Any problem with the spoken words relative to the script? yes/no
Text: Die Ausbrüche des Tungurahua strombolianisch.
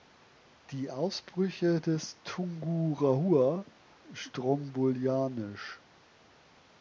no